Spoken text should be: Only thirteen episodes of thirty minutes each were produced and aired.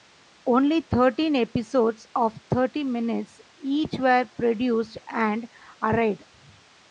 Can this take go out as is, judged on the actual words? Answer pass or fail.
pass